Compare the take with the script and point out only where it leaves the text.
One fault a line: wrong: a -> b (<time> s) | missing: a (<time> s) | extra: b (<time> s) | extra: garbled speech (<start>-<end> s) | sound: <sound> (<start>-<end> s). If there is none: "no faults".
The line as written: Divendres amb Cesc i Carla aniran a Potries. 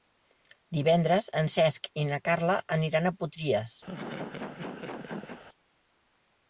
wrong: amb -> en (1.4 s)
extra: na (2.1 s)
sound: laugh (3.9-5.4 s)